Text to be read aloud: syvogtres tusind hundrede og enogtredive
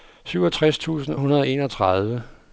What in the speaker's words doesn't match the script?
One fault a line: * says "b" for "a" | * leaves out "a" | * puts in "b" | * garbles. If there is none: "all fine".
all fine